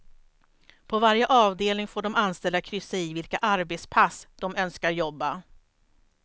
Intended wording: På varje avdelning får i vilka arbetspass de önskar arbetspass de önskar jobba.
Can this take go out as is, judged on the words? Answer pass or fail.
fail